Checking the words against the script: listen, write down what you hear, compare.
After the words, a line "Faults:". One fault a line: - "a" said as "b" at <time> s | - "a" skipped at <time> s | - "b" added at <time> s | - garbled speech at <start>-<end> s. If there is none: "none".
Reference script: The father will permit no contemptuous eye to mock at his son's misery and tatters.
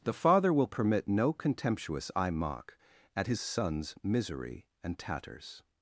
The father will permit no contemptuous eye mock at his son's misery and tatters.
Faults:
- "to" skipped at 2.3 s